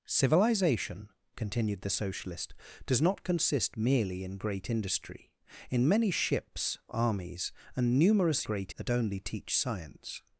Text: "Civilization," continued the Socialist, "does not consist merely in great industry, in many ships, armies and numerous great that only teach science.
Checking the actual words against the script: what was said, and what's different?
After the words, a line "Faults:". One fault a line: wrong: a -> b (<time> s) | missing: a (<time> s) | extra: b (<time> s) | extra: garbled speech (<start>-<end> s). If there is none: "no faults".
"Civilization," continued the Socialist, "does not consist merely in great industry, in many ships, armies and numerous great that only teach science.
Faults:
no faults